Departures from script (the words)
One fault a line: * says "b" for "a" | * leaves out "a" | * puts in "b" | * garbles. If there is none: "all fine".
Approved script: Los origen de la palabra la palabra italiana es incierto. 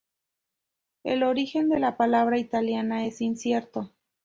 * says "El" for "Los"
* leaves out "la palabra"